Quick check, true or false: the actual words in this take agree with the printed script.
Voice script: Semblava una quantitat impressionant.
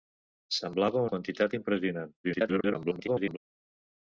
false